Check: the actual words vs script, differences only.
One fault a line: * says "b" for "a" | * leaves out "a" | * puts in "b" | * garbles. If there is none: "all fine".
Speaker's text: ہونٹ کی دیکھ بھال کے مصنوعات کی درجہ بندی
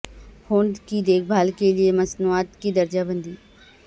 * puts in "لئے"